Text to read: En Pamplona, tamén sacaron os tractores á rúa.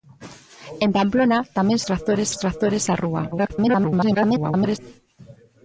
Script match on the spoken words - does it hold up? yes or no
no